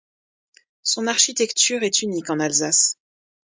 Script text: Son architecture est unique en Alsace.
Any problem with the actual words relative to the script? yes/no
no